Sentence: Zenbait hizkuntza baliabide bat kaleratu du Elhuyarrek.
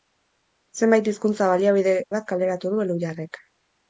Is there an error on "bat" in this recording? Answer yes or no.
no